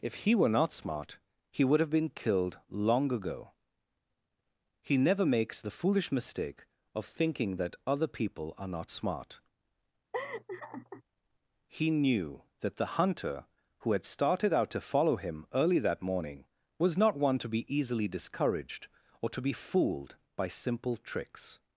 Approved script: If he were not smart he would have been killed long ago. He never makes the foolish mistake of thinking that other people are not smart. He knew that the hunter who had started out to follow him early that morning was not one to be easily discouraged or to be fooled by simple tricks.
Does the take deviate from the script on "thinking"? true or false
false